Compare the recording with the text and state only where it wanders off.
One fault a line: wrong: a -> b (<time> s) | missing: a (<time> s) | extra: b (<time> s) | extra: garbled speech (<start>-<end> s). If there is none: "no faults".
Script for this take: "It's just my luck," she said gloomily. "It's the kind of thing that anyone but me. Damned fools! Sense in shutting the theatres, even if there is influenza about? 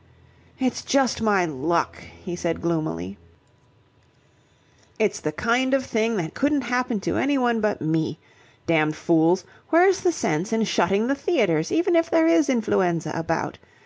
wrong: she -> he (2.2 s)
extra: couldn't happen to (6.3 s)
extra: Where's the (9.7 s)